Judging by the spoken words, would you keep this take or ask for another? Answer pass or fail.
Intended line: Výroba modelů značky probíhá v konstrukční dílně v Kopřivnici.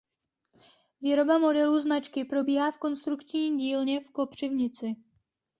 pass